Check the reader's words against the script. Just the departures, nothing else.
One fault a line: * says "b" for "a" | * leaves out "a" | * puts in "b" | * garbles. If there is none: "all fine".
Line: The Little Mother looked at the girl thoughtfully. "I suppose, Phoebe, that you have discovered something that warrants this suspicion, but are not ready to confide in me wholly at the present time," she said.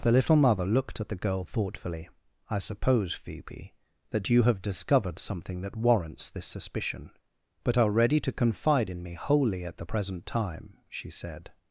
* leaves out "not"